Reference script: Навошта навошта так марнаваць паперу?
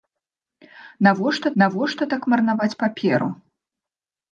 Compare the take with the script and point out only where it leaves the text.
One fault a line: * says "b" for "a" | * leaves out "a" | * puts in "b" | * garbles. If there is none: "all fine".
all fine